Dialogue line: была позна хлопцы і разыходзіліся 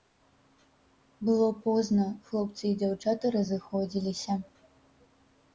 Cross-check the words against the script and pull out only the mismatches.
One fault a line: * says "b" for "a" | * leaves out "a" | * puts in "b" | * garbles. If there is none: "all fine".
* says "было" for "была"
* puts in "дзяўчаты"